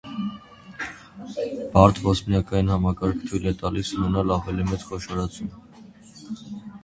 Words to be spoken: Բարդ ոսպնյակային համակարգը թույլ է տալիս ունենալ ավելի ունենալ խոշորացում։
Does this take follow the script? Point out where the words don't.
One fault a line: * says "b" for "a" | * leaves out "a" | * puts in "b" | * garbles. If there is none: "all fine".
* says "մեծ" for "ունենալ"